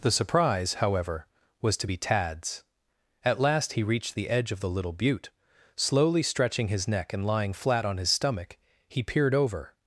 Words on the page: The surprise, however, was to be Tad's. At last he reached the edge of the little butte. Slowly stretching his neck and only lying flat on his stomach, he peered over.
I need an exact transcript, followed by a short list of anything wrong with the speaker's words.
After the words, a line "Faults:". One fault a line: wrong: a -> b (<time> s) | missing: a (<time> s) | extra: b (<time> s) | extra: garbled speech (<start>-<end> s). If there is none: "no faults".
The surprise, however, was to be Tad's. At last he reached the edge of the little butte. Slowly stretching his neck and lying flat on his stomach, he peered over.
Faults:
missing: only (7.3 s)